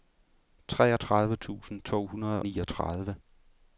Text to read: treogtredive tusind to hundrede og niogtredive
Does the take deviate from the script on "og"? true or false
true